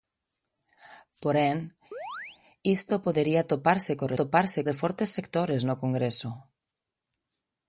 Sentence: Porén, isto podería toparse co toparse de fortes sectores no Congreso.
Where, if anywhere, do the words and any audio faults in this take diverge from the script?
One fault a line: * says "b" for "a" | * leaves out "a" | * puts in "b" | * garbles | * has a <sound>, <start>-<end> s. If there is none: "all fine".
* has a chirp, 1.9-2.4 s